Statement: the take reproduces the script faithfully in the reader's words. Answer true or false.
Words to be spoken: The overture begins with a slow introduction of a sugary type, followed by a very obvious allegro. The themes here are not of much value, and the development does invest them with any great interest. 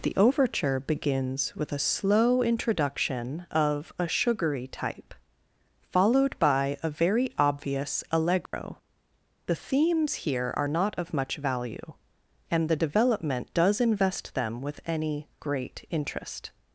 true